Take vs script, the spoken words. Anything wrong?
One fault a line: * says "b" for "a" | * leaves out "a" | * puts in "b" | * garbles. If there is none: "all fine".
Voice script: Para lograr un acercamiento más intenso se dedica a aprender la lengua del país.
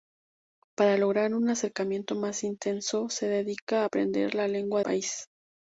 * leaves out "del"